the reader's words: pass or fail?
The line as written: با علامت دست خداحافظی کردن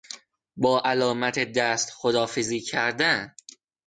pass